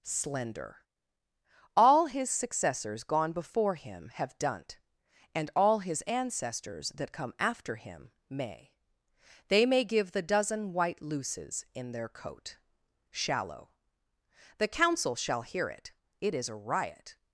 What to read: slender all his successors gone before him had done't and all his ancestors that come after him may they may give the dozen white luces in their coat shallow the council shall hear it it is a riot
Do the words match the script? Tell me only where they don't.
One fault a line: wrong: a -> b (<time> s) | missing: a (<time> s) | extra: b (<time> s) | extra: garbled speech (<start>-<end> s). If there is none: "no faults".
wrong: had -> have (4.1 s)